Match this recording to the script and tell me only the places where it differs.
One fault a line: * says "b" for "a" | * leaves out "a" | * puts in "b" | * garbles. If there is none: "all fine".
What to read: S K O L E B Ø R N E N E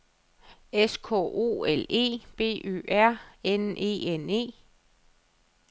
all fine